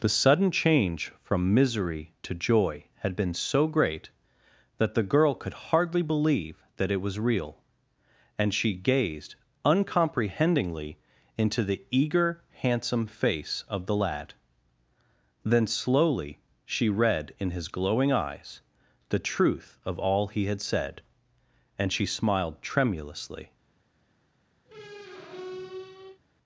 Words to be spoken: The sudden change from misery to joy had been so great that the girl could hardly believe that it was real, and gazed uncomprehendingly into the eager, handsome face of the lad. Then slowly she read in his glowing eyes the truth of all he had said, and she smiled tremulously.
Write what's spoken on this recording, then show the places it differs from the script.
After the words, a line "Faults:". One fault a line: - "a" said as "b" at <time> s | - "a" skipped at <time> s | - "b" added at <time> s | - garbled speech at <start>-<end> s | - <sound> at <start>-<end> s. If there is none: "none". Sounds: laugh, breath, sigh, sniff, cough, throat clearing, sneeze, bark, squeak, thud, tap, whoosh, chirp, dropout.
The sudden change from misery to joy had been so great that the girl could hardly believe that it was real, and she gazed uncomprehendingly into the eager, handsome face of the lad. Then slowly she read in his glowing eyes the truth of all he had said, and she smiled tremulously.
Faults:
- "she" added at 8.5 s
- squeak at 24.7-26.2 s